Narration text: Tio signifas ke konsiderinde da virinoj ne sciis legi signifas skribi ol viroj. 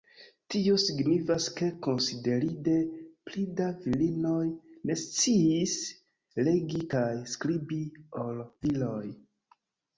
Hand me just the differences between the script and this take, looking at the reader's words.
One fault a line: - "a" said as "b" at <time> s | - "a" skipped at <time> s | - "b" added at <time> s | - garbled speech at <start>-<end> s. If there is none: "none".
- "pli" added at 3.3 s
- "signifas" said as "kaj" at 7.0 s